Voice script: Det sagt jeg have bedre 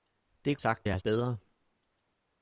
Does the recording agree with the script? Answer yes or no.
yes